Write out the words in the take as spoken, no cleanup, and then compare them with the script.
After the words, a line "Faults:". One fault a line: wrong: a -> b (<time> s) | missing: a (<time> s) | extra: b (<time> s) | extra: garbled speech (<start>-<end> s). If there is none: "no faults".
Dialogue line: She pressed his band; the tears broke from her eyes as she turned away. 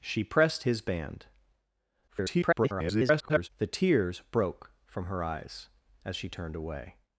She pressed his band; [garbled] the tears broke from her eyes as she turned away.
Faults:
extra: garbled speech (2.1-3.5 s)